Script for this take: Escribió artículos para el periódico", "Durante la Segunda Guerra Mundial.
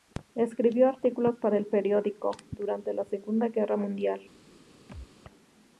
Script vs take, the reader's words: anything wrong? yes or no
no